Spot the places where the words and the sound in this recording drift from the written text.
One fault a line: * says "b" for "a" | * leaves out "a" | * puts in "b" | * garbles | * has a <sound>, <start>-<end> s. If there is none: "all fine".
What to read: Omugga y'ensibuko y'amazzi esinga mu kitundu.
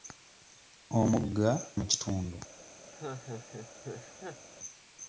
* leaves out "y'ensibuko y'amazzi esinga"
* has a laugh, 2.9-4.5 s